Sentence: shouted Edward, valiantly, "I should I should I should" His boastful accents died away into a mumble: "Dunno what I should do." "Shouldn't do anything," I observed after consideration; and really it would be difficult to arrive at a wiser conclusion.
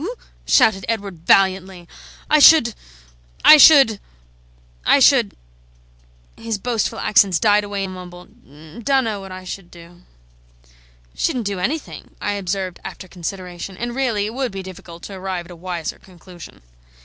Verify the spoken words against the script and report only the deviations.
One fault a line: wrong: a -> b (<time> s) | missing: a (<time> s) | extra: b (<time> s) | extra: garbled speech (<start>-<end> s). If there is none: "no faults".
missing: into (7.8 s)